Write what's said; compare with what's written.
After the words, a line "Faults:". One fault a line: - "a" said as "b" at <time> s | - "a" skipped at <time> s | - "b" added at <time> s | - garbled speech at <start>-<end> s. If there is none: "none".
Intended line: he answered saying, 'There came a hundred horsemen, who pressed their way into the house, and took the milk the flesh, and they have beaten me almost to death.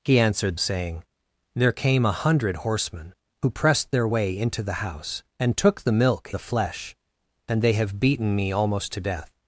he answered saying, 'There came a hundred horsemen, who pressed their way into the house, and took the milk the flesh, and they have beaten me almost to death.
Faults:
none